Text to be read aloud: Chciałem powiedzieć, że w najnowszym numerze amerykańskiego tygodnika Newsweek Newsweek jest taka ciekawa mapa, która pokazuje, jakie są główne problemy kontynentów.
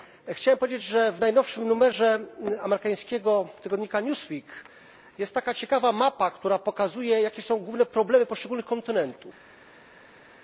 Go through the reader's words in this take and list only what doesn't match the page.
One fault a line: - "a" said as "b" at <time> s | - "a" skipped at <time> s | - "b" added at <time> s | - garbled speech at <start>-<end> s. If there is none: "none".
- "Newsweek" skipped at 4.4 s
- "poszczególnych" added at 8.2 s